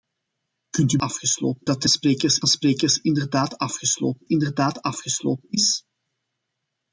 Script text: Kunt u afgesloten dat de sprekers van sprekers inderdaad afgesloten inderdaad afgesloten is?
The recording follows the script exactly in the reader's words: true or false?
true